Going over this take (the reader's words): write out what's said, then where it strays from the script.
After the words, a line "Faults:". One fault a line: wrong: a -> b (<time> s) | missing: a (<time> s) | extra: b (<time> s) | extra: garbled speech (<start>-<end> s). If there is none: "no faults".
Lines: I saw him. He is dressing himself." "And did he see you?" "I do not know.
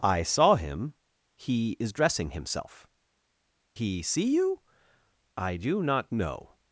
I saw him. He is dressing himself." "He see you?" "I do not know.
Faults:
missing: And did (2.9 s)